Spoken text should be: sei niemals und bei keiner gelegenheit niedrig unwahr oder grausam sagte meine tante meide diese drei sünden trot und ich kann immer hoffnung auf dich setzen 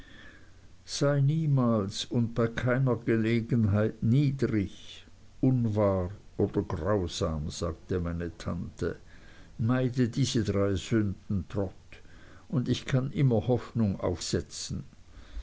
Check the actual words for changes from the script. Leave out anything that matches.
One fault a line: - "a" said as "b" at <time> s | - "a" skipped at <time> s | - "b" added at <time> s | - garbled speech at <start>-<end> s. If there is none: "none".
- "dich" skipped at 14.2 s